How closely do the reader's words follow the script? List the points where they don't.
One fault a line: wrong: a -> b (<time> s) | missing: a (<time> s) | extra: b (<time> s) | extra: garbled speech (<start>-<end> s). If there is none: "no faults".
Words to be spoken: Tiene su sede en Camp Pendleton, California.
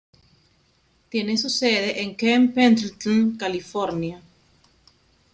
no faults